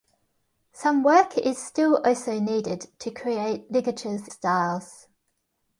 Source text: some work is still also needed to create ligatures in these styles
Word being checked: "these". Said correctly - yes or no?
no